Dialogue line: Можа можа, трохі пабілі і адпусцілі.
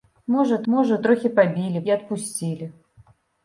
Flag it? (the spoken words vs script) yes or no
no